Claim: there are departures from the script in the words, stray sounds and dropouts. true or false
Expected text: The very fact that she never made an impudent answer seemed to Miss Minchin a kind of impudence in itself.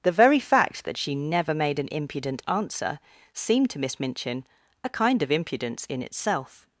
false